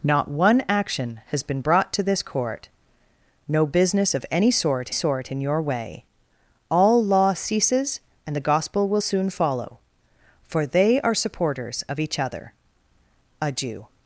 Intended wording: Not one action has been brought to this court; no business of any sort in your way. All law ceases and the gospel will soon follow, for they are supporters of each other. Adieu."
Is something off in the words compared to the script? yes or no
yes